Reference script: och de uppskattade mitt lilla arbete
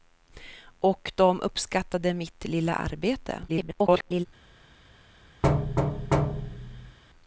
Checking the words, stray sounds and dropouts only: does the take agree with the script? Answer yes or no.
no